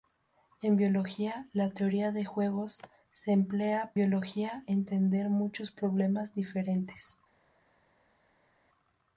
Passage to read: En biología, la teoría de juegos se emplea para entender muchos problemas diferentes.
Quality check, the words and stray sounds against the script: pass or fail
fail